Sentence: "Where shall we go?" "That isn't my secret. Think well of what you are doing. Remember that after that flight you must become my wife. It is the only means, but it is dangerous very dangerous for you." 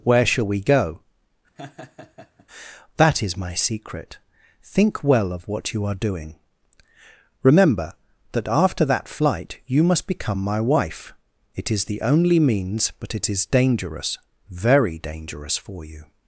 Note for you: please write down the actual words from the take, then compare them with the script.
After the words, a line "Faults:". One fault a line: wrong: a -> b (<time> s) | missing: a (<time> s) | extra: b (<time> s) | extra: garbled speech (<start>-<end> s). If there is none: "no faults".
"Where shall we go?" "That is my secret. Think well of what you are doing. Remember that after that flight you must become my wife. It is the only means, but it is dangerous very dangerous for you."
Faults:
wrong: isn't -> is (3.2 s)